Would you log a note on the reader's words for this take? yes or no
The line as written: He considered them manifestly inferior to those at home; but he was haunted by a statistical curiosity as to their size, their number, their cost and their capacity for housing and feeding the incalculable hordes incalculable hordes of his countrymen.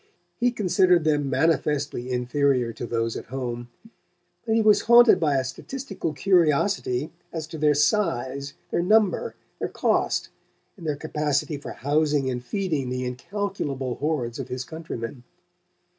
yes